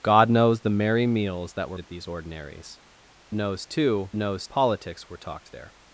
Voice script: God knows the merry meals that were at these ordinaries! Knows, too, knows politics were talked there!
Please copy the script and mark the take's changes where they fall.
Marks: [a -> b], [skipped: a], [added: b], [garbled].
God knows the merry meals that were at these ordinaries! Knows, too, knows politics were talked there!